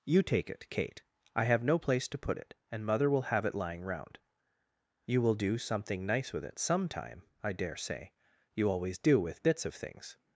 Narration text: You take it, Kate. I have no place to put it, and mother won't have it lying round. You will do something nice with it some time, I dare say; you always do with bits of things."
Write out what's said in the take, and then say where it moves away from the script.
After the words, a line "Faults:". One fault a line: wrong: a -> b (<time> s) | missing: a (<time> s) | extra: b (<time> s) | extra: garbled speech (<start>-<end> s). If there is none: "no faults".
You take it, Kate. I have no place to put it, and mother will have it lying round. You will do something nice with it some time, I dare say; you always do with bits of things."
Faults:
wrong: won't -> will (3.1 s)